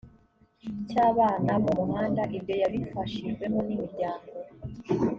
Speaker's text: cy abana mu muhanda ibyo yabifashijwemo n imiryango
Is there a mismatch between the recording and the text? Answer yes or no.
no